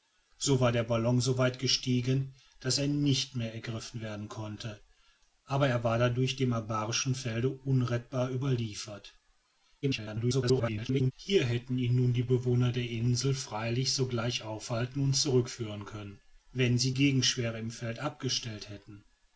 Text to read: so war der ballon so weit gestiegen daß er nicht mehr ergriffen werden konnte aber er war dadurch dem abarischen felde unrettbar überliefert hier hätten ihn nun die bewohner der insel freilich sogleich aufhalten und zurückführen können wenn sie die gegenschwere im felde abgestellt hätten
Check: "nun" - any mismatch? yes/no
no